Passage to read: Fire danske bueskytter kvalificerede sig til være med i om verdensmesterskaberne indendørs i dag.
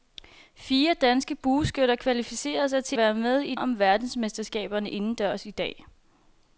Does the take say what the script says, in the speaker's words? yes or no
yes